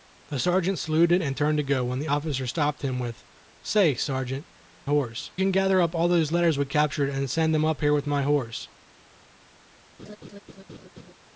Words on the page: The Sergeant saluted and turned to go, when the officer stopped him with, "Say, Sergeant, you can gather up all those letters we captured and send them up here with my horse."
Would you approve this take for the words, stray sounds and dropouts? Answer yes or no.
no